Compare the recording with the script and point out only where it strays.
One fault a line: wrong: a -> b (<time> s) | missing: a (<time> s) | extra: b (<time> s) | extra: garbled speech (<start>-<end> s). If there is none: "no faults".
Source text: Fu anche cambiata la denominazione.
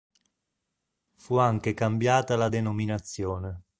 no faults